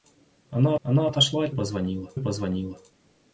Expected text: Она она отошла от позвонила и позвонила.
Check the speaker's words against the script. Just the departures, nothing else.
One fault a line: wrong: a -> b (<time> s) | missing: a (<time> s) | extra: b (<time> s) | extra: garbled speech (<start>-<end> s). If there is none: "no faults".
no faults